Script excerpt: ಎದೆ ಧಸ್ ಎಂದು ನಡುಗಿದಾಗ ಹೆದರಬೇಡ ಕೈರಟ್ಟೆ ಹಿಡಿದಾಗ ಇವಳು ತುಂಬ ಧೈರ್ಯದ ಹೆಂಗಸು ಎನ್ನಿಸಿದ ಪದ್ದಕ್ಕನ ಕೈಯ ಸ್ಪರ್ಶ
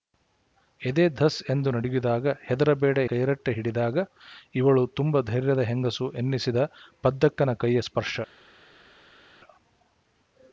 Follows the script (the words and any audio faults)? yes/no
yes